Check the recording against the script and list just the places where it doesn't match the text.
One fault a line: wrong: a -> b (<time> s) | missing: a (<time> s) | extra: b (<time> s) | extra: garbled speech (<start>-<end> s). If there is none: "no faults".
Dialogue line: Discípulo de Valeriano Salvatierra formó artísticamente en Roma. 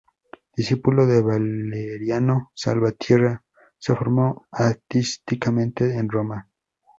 extra: se (3.8 s)